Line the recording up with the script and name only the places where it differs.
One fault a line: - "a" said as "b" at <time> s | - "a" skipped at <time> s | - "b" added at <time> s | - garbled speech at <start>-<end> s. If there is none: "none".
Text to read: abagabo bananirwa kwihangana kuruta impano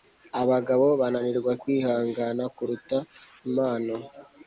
none